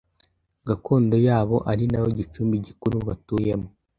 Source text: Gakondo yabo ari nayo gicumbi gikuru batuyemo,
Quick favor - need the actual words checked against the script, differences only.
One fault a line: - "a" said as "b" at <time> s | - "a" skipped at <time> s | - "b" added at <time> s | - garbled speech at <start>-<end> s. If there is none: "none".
none